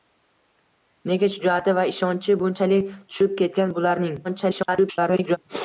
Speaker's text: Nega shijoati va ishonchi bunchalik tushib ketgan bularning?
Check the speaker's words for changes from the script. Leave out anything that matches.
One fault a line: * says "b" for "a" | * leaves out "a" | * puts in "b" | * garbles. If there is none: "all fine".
* garbles